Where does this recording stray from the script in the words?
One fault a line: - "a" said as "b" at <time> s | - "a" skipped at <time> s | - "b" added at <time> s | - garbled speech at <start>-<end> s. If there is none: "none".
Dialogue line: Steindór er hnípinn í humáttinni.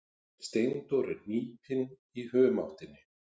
none